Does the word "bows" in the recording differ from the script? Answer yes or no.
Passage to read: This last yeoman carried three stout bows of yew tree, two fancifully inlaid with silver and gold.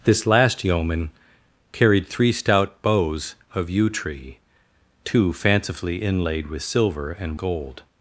no